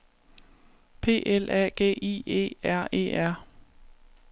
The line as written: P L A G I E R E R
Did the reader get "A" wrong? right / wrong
right